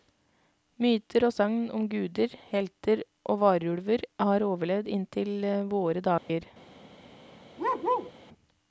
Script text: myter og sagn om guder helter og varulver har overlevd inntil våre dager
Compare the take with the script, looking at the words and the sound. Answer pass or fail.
fail